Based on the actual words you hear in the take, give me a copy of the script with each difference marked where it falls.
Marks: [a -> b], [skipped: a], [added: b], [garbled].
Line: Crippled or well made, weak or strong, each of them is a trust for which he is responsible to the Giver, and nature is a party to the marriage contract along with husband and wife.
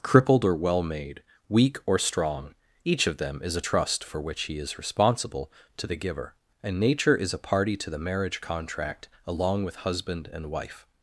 Crippled or well made, weak or strong, each of them is a trust for which he is responsible to the Giver, and nature is a party to the marriage contract along with husband and wife.